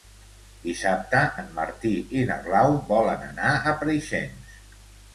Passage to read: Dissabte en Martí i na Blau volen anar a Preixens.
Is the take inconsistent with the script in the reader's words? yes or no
no